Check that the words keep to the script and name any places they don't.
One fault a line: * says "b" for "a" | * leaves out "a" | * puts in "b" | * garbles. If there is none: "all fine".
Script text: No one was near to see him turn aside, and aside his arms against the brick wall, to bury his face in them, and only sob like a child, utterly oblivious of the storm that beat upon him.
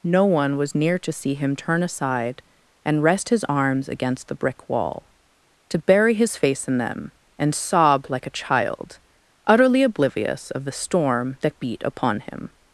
* says "rest" for "aside"
* leaves out "only"